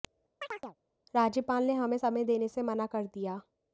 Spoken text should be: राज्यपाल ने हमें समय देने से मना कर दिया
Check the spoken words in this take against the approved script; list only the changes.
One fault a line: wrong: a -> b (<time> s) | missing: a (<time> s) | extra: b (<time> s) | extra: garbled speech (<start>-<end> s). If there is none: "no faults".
no faults